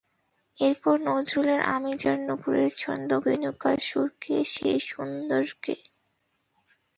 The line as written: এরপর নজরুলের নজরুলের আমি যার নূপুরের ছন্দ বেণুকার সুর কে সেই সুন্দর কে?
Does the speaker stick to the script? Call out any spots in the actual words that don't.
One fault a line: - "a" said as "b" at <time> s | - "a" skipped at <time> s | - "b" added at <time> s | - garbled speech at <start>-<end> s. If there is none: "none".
- "নজরুলের" skipped at 1.6 s